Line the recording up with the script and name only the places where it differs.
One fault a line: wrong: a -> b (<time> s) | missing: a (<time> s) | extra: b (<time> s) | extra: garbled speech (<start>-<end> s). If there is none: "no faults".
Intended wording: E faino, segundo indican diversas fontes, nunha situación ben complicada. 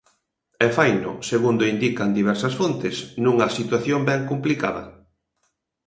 no faults